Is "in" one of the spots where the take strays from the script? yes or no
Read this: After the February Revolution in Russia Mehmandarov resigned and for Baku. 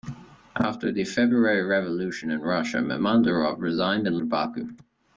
no